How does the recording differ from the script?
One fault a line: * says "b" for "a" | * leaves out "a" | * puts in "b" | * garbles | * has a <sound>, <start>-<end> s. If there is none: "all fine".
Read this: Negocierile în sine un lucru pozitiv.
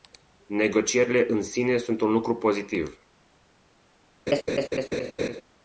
* puts in "sunt"
* has a laugh, 4.3-5.4 s